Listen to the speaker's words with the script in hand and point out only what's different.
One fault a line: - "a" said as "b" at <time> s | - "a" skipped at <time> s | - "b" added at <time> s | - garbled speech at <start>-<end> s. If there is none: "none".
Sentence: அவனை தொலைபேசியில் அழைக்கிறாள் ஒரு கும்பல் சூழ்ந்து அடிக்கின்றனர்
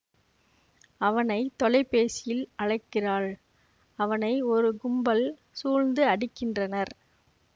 - "அவனை" added at 4.0 s